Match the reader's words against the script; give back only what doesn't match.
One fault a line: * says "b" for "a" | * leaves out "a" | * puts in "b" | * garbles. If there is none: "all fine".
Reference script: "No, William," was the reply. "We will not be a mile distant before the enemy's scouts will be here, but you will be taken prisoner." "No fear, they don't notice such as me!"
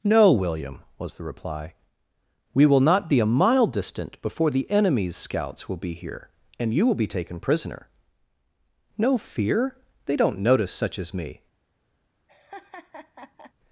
* says "and" for "but"